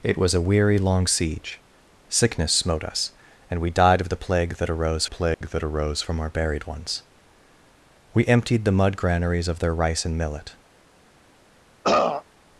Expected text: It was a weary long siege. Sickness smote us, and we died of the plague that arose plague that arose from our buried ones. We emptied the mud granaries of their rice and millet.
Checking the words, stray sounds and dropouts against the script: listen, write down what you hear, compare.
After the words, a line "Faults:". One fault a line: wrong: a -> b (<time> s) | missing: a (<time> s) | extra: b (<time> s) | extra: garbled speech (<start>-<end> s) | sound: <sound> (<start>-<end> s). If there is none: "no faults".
It was a weary long siege. Sickness smote us, and we died of the plague that arose plague that arose from our buried ones. We emptied the mud granaries of their rice and millet.
Faults:
sound: dropout (5.3-5.4 s)
sound: throat clearing (11.8-12.2 s)